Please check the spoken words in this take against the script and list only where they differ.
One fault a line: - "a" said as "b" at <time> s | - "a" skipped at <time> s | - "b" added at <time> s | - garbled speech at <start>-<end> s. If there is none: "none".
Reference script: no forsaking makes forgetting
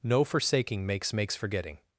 - "makes" added at 1.1 s